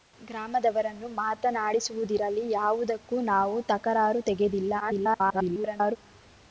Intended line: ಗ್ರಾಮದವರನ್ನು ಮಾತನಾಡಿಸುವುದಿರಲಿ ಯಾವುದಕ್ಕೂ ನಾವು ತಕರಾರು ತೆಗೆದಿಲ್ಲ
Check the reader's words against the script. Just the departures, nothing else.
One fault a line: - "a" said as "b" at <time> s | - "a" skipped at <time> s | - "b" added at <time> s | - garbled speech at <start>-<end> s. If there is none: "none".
- garbled speech at 4.8-6.0 s